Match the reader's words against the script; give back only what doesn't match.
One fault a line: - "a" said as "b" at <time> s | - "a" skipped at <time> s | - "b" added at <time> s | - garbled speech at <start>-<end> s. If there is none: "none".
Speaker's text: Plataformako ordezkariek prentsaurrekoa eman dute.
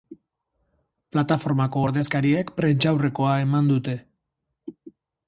none